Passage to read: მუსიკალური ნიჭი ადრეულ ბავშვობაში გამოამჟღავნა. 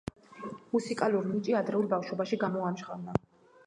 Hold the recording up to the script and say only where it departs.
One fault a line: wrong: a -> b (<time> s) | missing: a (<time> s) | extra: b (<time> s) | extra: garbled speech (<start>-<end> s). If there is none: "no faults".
no faults